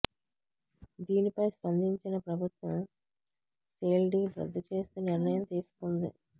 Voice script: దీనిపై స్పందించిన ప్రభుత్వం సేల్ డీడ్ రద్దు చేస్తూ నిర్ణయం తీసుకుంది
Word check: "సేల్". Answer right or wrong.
right